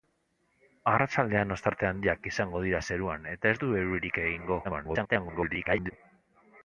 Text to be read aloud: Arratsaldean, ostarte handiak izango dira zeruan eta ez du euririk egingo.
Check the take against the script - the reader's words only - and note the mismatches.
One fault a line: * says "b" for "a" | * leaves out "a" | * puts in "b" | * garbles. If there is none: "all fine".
* garbles